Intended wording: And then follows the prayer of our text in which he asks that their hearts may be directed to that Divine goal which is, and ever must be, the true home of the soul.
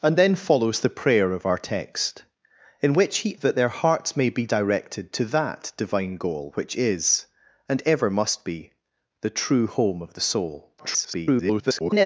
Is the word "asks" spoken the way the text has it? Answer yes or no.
no